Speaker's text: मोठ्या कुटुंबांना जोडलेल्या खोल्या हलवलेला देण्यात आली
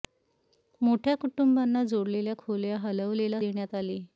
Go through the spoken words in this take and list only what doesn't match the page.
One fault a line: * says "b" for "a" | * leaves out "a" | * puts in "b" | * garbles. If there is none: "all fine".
all fine